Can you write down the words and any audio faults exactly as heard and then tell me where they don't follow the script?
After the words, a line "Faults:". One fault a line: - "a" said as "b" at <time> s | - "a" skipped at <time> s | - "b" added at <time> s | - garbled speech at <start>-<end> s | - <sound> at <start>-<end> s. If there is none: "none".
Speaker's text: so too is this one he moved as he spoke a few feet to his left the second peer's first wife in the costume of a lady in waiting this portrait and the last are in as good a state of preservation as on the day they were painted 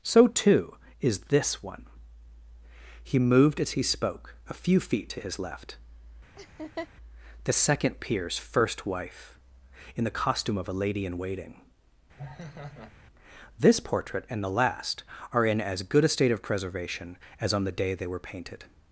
so too is this one he moved as he spoke a few feet to his left the second peer's first wife in the costume of a lady in waiting this portrait and the last are in as good a state of preservation as on the day they were painted
Faults:
- laugh at 6.4-6.9 s
- laugh at 12.2-12.9 s